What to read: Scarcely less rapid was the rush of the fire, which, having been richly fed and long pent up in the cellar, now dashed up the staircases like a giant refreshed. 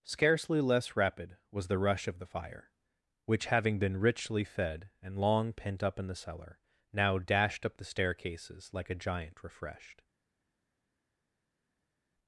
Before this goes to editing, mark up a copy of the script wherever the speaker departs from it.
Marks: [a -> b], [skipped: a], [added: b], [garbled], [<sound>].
Scarcely less rapid was the rush of the fire, which, having been richly fed and long pent up in the cellar, now dashed up the staircases like a giant refreshed.